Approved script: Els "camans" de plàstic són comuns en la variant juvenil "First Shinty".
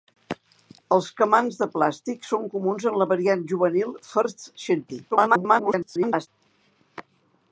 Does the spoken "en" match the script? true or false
true